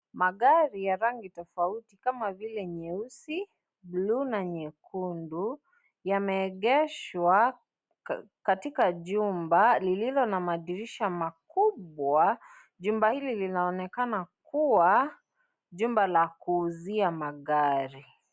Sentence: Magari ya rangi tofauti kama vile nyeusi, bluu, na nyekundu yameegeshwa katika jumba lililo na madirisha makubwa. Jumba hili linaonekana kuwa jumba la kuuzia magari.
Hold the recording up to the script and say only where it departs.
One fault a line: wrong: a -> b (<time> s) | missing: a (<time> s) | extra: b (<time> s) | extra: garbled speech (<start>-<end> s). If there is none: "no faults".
no faults